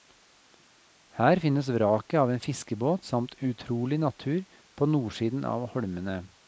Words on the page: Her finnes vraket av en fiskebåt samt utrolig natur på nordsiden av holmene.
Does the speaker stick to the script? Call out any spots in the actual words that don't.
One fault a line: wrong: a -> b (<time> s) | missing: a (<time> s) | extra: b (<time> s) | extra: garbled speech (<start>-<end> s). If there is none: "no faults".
no faults